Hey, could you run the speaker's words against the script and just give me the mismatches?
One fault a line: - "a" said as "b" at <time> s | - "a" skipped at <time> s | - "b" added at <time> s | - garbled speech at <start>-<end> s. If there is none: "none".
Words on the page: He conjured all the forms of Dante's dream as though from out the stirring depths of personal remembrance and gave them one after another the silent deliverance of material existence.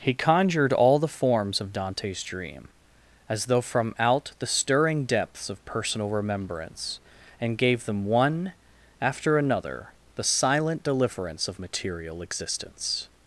none